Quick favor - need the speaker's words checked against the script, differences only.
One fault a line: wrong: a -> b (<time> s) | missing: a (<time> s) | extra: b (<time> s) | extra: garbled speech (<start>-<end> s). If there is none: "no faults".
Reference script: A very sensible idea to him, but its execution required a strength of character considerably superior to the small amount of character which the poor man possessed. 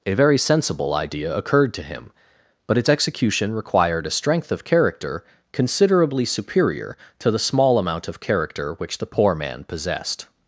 extra: occurred (1.4 s)